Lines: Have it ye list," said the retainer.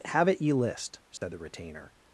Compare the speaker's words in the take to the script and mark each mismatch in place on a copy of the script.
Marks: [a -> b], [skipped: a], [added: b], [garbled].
Have it ye list," said the retainer.